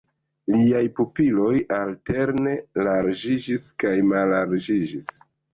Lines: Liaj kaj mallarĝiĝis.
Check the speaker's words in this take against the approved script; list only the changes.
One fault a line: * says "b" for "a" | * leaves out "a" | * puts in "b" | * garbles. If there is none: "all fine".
* puts in "pupiloj alterne larĝiĝis"